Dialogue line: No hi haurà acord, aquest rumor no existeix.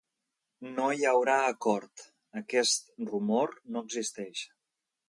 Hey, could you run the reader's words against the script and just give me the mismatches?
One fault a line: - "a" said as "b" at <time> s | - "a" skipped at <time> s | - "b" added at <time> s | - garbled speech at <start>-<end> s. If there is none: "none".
none